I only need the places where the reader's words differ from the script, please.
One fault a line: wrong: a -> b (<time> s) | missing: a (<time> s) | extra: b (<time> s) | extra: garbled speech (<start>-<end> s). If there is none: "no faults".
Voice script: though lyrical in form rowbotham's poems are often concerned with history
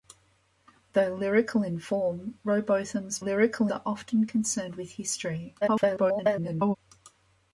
wrong: poems -> lyrical (3.2 s)
extra: garbled speech (5.6-6.8 s)